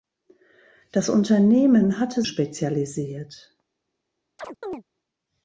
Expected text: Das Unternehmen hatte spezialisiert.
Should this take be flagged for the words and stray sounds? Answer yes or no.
yes